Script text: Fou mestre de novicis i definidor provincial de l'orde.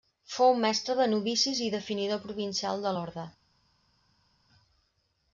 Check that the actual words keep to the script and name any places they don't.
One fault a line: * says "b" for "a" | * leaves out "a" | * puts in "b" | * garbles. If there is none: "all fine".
all fine